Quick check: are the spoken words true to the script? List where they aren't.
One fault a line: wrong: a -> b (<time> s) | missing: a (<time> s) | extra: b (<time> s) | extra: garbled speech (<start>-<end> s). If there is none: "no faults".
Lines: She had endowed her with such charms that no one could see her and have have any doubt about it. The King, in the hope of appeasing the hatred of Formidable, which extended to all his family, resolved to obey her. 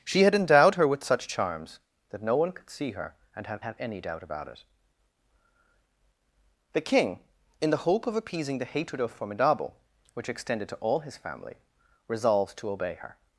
no faults